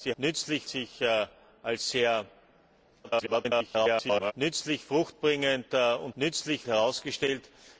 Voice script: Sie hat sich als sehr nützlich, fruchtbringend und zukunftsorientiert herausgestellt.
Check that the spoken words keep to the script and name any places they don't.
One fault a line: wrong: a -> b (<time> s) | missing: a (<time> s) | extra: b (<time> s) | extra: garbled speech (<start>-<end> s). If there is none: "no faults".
wrong: hat -> nützlich (0.2 s)
extra: garbled speech (3.0-4.3 s)
wrong: zukunftsorientiert -> nützlich (6.1 s)